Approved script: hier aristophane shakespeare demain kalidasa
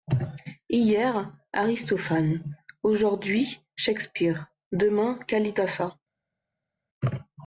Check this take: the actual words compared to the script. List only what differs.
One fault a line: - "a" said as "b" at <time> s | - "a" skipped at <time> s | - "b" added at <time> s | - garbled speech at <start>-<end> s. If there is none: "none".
- "aujourd'hui" added at 2.8 s